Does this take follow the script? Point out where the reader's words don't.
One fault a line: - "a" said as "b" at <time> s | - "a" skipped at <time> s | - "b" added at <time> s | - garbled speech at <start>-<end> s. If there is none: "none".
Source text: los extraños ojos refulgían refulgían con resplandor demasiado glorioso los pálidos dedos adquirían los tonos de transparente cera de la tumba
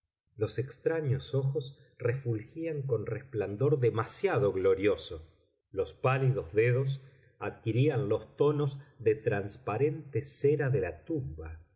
- "refulgían" skipped at 2.8 s